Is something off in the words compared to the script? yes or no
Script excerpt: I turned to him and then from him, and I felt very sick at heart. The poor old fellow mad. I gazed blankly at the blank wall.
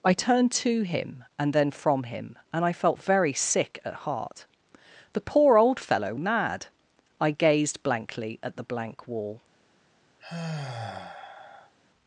no